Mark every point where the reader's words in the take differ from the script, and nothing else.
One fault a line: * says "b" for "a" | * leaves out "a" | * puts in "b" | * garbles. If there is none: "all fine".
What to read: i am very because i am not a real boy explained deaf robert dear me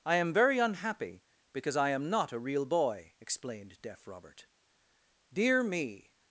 * puts in "unhappy"